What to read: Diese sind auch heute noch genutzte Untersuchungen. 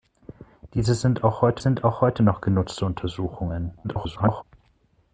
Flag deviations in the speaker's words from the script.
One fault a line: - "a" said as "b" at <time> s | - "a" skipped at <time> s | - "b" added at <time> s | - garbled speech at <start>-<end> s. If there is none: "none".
- "sind auch heute" added at 1.6 s
- garbled speech at 3.8-4.4 s